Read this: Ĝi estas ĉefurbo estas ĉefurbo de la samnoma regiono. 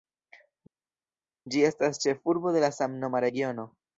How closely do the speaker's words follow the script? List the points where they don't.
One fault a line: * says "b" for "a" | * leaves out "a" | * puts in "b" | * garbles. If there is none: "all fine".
* leaves out "estas ĉefurbo"